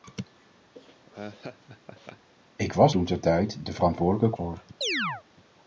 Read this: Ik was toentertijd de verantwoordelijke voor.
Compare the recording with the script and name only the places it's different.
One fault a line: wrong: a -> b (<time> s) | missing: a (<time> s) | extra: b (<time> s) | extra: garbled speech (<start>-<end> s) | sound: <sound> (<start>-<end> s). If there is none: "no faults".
sound: laugh (0.7-2.3 s)
sound: chirp (4.8-5.2 s)